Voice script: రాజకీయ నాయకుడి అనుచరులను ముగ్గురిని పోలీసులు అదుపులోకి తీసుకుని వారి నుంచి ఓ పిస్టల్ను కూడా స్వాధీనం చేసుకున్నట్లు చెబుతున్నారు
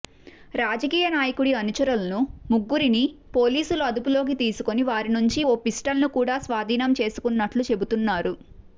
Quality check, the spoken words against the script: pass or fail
pass